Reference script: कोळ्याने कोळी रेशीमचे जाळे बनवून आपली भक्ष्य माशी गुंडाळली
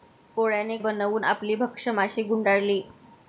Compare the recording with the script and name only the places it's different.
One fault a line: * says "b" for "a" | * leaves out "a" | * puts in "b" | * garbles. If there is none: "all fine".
* leaves out "कोळी रेशीमचे जाळे"